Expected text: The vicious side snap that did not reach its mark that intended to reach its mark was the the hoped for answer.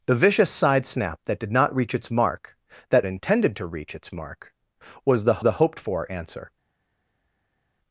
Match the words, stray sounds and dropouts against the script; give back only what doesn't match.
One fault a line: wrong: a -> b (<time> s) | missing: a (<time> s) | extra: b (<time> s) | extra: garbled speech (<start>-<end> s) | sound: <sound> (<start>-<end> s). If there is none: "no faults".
no faults